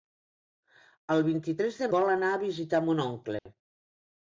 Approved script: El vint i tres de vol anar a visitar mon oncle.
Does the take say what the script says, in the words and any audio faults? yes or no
no